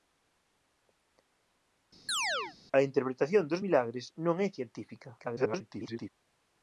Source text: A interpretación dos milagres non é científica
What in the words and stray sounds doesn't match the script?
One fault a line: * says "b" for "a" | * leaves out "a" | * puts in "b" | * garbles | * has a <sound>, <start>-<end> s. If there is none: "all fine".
* has a chirp, 2.1-2.6 s
* garbles